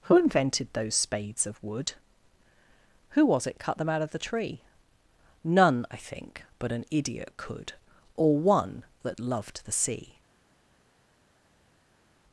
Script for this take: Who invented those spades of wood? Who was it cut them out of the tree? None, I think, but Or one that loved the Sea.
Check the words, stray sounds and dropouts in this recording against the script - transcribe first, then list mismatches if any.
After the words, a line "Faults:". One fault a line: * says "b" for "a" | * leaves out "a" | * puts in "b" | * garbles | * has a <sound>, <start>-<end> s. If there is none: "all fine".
Who invented those spades of wood? Who was it cut them out of the tree? None, I think, but an idiot could, Or one that loved the Sea.
Faults:
* puts in "an idiot could"